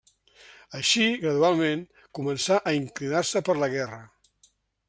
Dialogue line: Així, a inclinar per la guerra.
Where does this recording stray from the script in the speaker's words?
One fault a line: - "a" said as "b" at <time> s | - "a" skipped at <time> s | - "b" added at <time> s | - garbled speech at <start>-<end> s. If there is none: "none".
- "gradualment començà" added at 1.2 s
- "se" added at 3.3 s